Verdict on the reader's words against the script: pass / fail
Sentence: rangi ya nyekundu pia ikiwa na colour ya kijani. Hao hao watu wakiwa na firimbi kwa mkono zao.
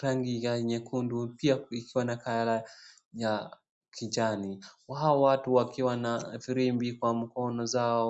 fail